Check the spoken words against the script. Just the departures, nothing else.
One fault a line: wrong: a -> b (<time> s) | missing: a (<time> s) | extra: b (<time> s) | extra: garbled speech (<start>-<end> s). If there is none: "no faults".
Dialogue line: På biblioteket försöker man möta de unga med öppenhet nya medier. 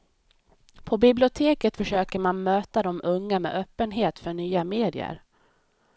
extra: för (4.2 s)